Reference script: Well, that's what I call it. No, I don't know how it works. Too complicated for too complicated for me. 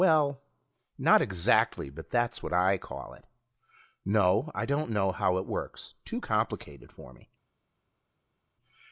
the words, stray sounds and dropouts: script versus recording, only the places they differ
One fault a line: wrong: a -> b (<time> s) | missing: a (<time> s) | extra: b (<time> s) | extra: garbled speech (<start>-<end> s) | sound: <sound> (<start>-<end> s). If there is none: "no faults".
extra: not exactly but (1.0 s)
missing: too complicated for (7.1 s)